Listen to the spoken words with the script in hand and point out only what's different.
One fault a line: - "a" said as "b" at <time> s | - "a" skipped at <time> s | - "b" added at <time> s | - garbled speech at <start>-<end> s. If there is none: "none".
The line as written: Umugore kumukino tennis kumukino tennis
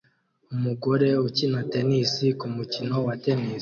- "kumukino" said as "ukina" at 1.3 s
- "wa" added at 3.0 s